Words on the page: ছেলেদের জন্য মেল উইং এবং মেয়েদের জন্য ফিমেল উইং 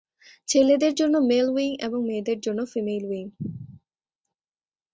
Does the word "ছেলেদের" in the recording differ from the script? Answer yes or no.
no